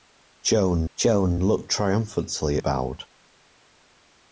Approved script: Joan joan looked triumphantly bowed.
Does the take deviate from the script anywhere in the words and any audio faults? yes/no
no